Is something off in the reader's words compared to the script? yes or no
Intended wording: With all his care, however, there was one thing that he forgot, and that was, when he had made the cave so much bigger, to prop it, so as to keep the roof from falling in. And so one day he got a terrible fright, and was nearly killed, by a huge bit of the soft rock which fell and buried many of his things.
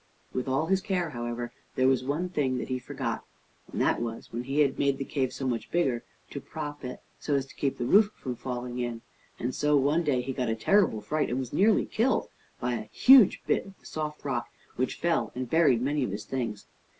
no